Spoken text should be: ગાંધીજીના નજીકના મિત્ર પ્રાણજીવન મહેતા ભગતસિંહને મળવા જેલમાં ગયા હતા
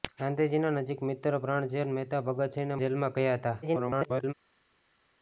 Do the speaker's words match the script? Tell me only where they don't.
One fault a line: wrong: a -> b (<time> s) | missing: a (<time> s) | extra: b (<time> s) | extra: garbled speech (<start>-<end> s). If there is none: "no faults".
missing: મળવા (2.8 s)
extra: garbled speech (3.6-4.3 s)